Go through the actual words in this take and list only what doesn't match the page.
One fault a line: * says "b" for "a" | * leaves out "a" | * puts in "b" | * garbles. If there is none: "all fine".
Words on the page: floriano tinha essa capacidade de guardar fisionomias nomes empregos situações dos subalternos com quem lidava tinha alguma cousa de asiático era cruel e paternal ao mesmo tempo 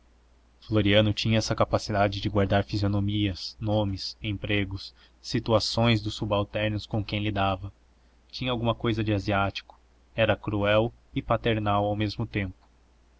all fine